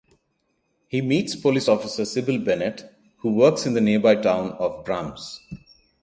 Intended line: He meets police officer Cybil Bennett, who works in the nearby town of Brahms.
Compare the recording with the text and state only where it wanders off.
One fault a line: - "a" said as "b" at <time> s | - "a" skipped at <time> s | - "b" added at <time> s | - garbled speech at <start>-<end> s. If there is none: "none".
none